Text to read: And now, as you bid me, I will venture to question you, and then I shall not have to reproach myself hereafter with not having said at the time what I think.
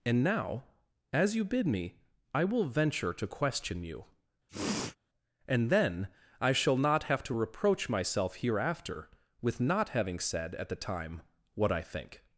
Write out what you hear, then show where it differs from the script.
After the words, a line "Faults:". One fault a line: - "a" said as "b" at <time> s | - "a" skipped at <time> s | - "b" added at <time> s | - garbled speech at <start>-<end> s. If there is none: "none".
And now, as you bid me, I will venture to question you, and then I shall not have to reproach myself hereafter with not having said at the time what I think.
Faults:
none